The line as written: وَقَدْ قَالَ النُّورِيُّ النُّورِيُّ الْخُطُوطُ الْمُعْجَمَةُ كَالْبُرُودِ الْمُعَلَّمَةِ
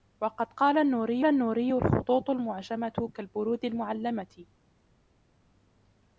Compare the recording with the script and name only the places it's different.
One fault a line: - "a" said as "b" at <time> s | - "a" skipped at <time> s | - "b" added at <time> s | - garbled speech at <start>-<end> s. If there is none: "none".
none